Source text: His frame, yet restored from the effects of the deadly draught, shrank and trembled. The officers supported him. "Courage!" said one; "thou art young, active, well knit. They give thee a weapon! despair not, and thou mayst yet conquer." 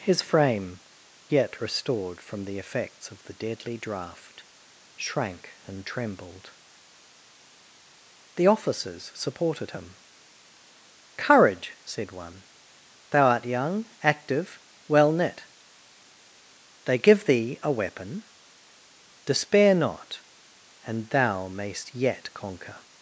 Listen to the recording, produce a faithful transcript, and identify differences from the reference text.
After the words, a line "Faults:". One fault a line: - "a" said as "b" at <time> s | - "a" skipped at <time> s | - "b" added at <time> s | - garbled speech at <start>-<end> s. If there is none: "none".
His frame, yet restored from the effects of the deadly draught, shrank and trembled. The officers supported him. "Courage!" said one; "thou art young, active, well knit. They give thee a weapon! despair not, and thou mayst yet conquer."
Faults:
none